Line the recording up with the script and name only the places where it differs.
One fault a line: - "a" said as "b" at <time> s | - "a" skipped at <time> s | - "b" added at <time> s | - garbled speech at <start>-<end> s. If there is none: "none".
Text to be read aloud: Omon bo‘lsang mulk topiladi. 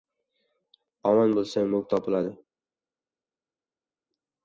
none